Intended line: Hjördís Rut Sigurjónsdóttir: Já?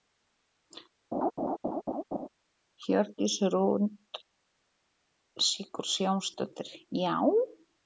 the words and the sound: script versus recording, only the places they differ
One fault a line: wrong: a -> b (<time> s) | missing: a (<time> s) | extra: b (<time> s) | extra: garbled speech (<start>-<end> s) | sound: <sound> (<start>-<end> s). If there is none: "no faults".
sound: laugh (1.1-2.3 s)